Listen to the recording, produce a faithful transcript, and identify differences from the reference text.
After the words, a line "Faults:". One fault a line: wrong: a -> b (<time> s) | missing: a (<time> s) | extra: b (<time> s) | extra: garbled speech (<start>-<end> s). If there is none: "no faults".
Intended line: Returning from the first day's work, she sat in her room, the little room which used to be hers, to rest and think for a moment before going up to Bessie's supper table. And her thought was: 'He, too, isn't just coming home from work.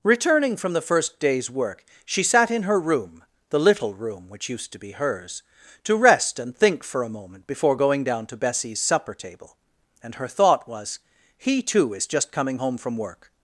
Returning from the first day's work, she sat in her room, the little room which used to be hers, to rest and think for a moment before going down to Bessie's supper table. And her thought was: 'He, too, is just coming home from work.
Faults:
wrong: up -> down (8.0 s)
wrong: isn't -> is (11.9 s)